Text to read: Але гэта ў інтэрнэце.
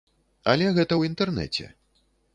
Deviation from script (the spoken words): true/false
false